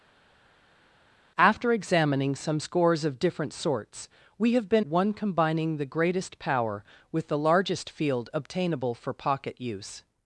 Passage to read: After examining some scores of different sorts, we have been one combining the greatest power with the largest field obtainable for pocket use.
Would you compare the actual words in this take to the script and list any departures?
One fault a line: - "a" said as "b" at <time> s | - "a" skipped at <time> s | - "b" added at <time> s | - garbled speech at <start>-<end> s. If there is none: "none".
none